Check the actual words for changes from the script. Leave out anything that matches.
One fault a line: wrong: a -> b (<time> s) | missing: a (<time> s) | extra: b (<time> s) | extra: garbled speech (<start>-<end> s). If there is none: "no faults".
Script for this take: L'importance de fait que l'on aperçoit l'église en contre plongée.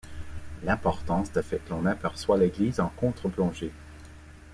no faults